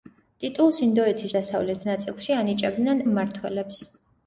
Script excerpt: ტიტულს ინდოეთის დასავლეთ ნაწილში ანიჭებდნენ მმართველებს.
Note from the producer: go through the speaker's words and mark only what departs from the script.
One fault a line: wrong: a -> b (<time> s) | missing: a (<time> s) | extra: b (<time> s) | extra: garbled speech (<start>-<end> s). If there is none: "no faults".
no faults